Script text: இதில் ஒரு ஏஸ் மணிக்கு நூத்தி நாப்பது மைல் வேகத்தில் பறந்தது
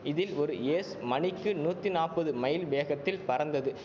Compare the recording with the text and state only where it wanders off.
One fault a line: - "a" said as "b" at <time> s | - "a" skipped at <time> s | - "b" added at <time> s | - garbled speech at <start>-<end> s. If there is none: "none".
none